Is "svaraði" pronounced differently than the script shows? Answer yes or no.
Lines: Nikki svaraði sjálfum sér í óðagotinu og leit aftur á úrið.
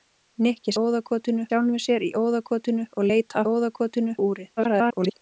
yes